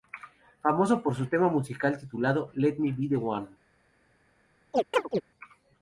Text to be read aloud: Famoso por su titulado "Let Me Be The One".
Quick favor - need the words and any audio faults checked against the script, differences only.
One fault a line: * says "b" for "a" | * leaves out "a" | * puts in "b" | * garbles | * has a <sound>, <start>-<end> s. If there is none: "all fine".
* puts in "tema musical"
* has a chirp, 4.7-5.2 s